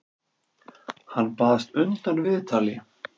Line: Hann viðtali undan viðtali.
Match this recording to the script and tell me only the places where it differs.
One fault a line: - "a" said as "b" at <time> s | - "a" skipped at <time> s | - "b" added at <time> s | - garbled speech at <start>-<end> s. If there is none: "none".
- "viðtali" said as "baðst" at 1.4 s